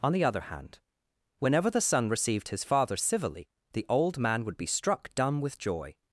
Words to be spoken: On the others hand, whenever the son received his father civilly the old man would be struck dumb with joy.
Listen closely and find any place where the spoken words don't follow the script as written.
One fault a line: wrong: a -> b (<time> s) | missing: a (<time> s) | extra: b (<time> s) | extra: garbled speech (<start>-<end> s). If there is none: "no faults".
wrong: others -> other (0.2 s)